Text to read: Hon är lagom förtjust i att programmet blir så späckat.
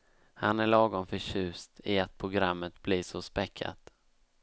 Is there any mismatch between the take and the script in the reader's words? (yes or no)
yes